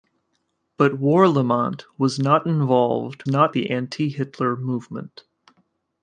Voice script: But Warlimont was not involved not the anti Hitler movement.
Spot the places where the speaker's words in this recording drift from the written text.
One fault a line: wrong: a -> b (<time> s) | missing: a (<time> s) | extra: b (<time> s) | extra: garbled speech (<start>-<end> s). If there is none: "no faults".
no faults